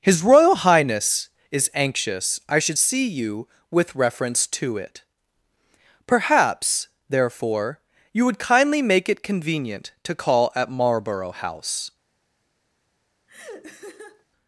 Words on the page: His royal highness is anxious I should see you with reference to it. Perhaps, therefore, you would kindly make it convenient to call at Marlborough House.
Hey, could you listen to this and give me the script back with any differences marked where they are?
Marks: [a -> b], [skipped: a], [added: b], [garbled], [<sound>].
His royal highness is anxious I should see you with reference to it. Perhaps, therefore, you would kindly make it convenient to call at Marlborough House. [laugh]